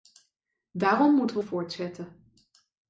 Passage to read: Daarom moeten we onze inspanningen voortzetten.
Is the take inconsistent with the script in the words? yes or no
yes